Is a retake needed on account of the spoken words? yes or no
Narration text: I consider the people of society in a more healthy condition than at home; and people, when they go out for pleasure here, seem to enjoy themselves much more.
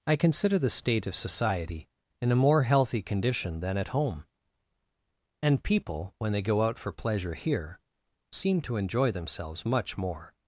yes